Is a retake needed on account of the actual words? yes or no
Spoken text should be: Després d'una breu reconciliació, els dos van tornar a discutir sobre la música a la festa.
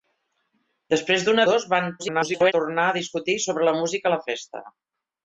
yes